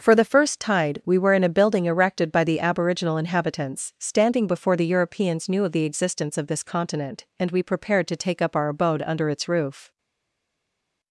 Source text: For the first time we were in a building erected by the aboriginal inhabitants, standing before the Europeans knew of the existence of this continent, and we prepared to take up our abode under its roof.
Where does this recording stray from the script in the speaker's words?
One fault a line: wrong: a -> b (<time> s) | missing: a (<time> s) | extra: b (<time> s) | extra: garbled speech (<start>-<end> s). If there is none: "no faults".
wrong: time -> tide (0.6 s)